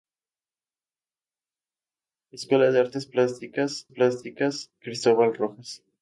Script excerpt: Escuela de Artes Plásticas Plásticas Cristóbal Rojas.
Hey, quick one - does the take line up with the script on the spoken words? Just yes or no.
yes